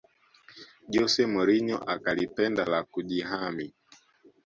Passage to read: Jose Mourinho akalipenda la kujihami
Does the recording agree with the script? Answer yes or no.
yes